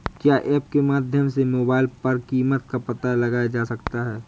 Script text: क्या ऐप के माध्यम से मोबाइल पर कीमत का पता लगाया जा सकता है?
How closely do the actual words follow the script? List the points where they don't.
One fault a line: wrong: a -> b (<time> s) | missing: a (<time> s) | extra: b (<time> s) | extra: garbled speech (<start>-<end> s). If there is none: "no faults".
no faults